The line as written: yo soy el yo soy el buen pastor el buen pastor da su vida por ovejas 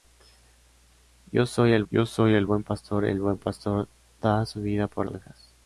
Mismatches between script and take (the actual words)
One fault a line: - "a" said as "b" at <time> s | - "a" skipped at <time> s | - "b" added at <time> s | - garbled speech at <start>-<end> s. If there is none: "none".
none